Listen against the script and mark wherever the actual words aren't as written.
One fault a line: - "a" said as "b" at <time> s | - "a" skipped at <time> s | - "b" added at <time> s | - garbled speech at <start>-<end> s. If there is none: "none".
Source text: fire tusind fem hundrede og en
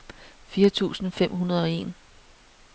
none